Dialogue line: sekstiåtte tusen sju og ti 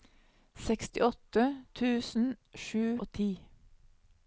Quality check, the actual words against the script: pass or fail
pass